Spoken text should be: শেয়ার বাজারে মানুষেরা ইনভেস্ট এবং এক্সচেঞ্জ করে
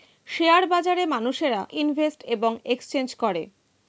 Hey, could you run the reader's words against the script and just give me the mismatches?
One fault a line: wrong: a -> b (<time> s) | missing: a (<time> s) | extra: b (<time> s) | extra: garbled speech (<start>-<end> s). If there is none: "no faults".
no faults